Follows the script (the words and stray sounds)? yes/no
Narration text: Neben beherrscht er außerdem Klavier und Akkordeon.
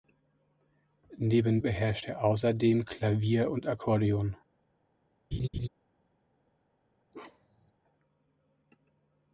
no